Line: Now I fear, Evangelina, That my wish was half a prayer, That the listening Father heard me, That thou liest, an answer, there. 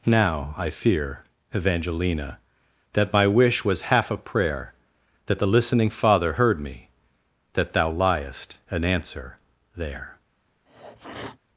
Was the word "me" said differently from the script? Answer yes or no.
no